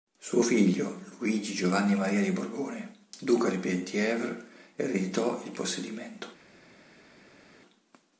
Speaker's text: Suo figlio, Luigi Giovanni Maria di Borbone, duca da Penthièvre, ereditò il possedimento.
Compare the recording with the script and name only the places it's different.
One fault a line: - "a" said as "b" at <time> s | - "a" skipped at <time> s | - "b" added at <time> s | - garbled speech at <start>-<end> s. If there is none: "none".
- "da" said as "di" at 3.5 s